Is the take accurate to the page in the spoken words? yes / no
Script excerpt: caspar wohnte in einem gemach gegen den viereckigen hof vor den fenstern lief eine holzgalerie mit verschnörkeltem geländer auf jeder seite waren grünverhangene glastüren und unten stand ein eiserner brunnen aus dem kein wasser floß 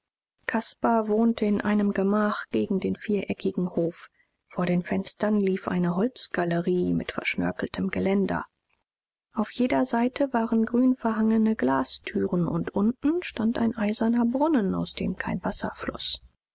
yes